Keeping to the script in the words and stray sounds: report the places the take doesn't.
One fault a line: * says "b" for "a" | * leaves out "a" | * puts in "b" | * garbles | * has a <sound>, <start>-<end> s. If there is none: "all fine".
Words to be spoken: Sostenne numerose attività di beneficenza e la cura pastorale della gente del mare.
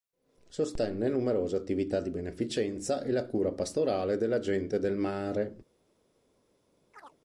* has a chirp, 6.9-7.2 s